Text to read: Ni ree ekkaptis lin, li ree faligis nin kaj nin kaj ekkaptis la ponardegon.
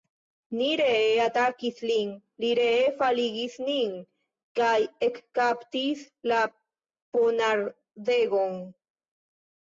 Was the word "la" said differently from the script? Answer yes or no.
no